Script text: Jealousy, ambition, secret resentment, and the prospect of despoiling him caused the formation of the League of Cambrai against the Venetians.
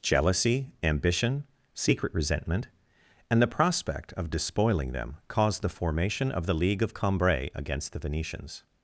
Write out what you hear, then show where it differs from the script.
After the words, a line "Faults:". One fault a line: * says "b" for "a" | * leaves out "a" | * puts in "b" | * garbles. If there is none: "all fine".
Jealousy, ambition, secret resentment, and the prospect of despoiling them caused the formation of the League of Cambrai against the Venetians.
Faults:
* says "them" for "him"